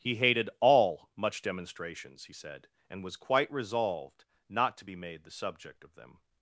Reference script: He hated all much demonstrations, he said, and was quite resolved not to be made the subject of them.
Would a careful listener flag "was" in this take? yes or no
no